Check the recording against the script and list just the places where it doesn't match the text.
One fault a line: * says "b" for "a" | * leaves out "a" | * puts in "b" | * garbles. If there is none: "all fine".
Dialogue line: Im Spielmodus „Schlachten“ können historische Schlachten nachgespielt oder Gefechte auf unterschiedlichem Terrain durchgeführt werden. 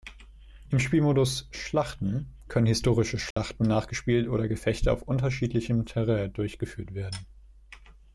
all fine